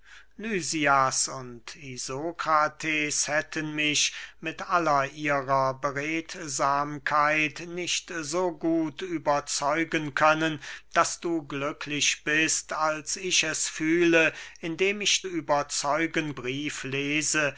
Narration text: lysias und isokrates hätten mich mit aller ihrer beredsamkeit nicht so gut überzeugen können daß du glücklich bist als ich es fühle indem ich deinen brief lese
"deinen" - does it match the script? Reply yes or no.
no